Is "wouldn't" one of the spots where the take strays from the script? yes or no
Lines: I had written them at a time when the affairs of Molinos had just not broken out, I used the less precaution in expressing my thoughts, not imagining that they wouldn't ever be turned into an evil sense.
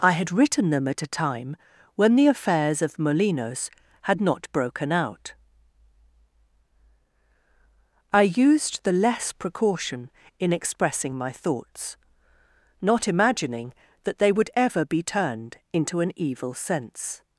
yes